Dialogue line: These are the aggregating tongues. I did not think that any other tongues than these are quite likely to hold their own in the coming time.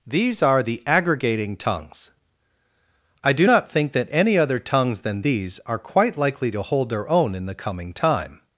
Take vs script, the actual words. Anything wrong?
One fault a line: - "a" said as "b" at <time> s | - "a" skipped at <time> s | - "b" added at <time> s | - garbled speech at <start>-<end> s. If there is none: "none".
- "did" said as "do" at 3.3 s